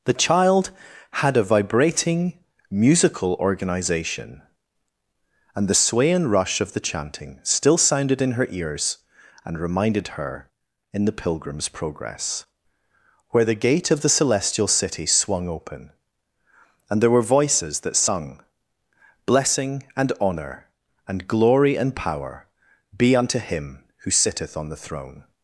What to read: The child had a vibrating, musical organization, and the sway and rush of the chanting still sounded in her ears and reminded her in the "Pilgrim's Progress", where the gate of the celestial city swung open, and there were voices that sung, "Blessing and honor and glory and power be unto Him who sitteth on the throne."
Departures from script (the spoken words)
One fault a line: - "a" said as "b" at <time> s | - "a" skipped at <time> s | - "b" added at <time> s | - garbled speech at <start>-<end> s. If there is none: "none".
none